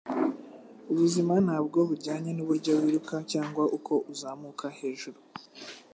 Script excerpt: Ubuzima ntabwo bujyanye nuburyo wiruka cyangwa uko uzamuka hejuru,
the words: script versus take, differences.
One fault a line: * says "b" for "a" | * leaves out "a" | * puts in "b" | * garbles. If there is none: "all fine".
all fine